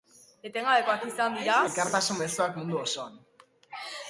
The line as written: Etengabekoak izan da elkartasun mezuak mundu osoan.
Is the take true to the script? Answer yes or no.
no